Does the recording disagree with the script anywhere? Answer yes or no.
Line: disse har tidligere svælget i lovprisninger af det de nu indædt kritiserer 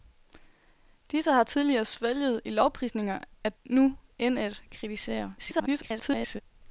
yes